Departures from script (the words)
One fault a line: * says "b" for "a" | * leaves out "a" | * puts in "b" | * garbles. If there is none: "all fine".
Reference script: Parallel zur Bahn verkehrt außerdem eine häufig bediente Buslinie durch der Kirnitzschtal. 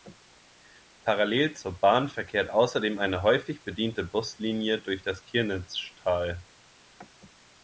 * says "das" for "der"